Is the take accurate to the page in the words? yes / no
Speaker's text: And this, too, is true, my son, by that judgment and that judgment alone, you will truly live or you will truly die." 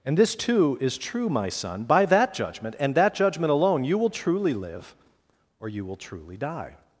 yes